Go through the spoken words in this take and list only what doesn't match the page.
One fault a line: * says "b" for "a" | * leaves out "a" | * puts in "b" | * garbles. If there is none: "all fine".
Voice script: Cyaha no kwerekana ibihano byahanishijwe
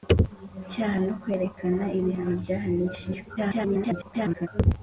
* garbles